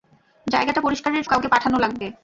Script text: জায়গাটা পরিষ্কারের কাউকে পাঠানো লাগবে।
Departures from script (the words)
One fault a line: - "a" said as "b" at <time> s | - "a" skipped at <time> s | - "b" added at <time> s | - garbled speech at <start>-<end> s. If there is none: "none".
none